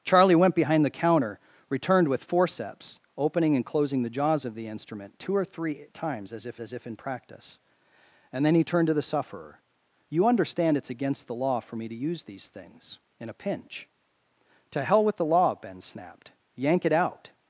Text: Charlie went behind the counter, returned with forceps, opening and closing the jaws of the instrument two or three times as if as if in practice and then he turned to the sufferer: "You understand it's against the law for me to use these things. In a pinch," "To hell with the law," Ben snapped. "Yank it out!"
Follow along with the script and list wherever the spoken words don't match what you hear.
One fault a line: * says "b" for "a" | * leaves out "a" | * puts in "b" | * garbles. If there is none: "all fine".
all fine